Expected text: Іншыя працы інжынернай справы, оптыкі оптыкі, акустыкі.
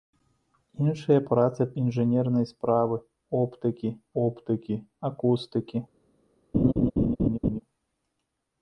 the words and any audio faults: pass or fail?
fail